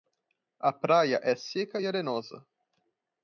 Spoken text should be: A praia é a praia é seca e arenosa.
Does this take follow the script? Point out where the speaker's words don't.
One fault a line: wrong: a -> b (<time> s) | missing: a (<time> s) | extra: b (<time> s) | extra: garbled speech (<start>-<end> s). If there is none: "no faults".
missing: a praia é (1.4 s)